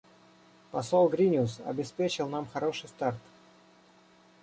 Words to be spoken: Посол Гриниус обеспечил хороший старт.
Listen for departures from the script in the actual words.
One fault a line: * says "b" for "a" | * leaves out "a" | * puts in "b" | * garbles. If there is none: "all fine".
* puts in "нам"